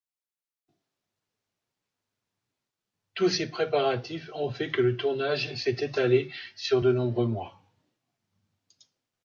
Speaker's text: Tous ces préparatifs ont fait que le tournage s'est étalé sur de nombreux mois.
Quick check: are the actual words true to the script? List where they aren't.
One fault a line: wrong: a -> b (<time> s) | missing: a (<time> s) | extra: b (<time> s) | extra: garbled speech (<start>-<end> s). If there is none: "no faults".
no faults